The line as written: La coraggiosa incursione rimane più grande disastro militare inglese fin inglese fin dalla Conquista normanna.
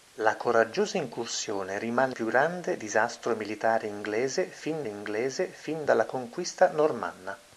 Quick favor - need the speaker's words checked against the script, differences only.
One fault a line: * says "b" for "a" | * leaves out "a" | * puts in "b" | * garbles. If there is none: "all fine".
all fine